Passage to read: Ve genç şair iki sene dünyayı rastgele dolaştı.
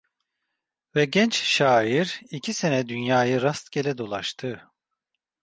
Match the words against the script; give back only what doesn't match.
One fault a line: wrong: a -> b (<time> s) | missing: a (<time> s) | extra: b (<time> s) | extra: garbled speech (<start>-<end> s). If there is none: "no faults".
no faults